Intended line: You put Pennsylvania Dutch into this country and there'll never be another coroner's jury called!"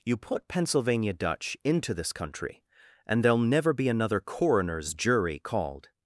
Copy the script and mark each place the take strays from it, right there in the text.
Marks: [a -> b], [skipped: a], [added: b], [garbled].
You put Pennsylvania Dutch into this country and there'll never be another coroner's jury called!"